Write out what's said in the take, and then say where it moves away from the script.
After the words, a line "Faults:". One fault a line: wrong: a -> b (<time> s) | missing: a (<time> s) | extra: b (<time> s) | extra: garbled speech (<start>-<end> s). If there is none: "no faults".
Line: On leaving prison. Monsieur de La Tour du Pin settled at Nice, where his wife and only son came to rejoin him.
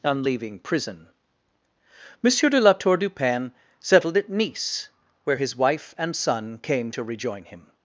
On leaving prison. Monsieur de La Tour du Pin settled at Nice, where his wife and son came to rejoin him.
Faults:
missing: only (6.1 s)